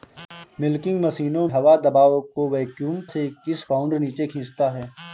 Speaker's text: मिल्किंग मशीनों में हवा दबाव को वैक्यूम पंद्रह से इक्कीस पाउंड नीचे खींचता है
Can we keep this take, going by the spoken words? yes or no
no